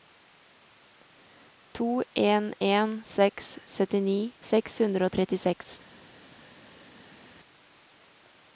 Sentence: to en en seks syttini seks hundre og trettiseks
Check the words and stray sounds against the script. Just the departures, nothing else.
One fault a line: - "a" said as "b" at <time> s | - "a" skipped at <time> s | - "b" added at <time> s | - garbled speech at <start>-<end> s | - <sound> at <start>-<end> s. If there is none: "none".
none